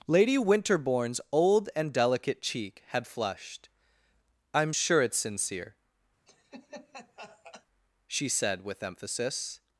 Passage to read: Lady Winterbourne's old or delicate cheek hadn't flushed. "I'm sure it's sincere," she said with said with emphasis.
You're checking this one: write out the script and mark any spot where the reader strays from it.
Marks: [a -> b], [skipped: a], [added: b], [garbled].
Lady Winterbourne's old [or -> and] delicate cheek [hadn't -> had] flushed. "I'm sure it's sincere," she said with [skipped: said with] emphasis.